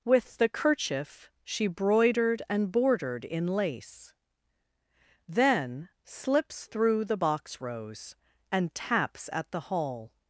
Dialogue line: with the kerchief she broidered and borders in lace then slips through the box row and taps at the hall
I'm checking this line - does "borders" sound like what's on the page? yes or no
no